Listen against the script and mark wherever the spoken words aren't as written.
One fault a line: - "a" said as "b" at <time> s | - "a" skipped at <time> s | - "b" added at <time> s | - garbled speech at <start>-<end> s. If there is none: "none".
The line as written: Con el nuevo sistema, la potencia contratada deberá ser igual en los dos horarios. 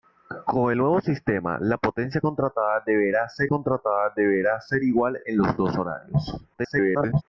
- "el" skipped at 0.7 s
- "contratada deberá ser" added at 3.5 s
- garbled speech at 6.5-7.2 s